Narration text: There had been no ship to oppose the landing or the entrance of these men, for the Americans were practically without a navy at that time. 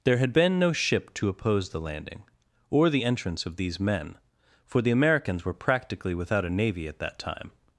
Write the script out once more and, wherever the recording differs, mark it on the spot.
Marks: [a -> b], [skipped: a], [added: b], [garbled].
There had been no ship to oppose the landing or the entrance of these men, for the Americans were practically without a navy at that time.